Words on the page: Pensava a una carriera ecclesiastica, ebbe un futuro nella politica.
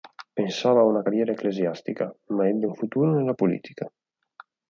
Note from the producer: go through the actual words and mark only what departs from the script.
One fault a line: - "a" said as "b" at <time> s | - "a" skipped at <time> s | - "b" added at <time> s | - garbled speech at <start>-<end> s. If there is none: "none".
- "ma" added at 2.3 s